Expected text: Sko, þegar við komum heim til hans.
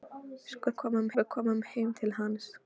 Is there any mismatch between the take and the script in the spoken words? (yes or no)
yes